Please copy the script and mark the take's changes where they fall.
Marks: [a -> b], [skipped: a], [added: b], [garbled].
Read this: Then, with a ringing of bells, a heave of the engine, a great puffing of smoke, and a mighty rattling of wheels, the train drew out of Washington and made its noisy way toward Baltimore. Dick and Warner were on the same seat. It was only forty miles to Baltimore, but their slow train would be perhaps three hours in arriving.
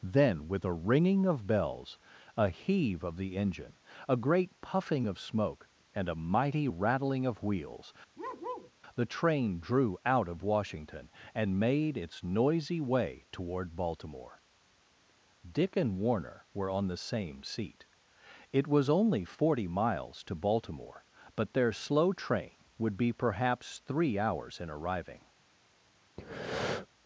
Then, with a ringing of bells, a heave of the engine, a great puffing of smoke, and a mighty rattling of wheels, the train drew out of Washington and made its noisy way toward Baltimore. Dick and Warner were on the same seat. It was only forty miles to Baltimore, but their slow train would be perhaps three hours in arriving.